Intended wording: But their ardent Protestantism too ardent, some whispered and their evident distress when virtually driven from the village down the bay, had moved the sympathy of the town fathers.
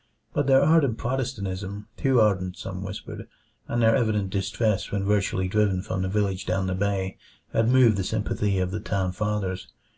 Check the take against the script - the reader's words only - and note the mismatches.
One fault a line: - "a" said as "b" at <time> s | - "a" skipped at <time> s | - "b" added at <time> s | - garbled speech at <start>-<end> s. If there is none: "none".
none